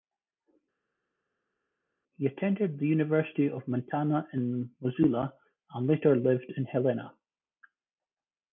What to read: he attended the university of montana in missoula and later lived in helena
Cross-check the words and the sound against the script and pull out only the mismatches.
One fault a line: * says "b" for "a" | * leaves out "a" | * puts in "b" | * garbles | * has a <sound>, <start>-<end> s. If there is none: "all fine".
all fine